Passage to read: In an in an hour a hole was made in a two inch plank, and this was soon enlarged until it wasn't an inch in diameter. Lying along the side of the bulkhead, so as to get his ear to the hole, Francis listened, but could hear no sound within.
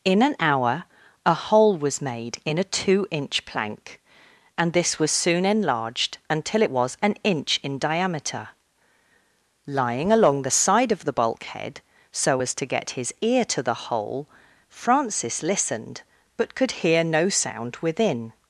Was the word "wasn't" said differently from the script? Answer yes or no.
yes